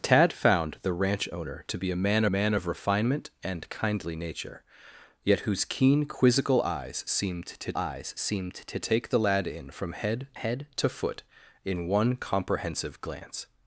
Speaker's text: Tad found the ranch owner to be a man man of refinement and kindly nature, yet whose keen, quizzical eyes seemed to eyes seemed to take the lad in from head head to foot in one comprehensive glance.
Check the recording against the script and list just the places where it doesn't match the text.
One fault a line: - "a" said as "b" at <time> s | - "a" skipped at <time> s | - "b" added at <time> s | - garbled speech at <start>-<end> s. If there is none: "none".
none